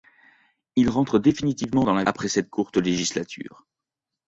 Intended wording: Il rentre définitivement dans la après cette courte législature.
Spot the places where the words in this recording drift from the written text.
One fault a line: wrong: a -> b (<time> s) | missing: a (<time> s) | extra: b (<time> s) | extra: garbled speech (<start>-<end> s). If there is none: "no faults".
no faults